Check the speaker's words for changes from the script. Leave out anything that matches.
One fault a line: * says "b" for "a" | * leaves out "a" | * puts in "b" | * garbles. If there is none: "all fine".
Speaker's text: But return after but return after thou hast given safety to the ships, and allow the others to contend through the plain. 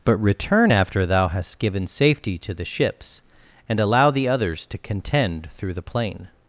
* leaves out "but return after"